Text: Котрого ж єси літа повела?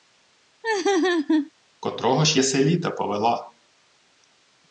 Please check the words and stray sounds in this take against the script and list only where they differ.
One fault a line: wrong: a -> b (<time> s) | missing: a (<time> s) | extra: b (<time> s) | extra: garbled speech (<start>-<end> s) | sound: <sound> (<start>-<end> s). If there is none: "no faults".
sound: laugh (0.6-1.5 s)